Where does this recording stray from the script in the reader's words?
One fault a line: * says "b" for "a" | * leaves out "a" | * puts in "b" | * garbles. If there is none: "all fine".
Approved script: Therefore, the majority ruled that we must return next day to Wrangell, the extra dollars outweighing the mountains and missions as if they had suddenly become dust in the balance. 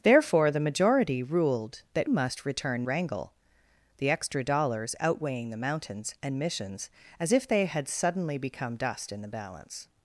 * leaves out "we"
* leaves out "next day to"